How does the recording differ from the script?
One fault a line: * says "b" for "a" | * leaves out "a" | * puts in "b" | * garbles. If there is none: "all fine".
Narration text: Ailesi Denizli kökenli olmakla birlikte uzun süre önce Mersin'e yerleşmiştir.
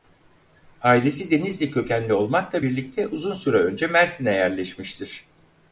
all fine